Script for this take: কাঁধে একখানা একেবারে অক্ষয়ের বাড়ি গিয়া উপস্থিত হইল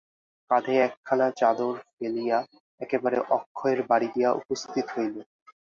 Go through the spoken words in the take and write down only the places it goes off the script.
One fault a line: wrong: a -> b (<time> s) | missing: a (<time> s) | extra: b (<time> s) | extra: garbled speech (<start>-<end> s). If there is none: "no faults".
extra: চাদর ফেলিয়া (1.4 s)